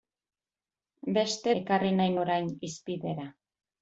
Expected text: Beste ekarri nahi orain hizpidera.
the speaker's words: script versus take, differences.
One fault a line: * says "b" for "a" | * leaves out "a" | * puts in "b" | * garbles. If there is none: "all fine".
all fine